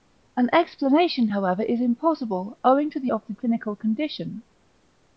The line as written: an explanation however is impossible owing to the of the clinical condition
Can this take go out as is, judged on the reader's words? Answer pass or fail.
pass